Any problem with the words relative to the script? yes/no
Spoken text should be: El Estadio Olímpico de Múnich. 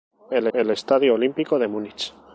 yes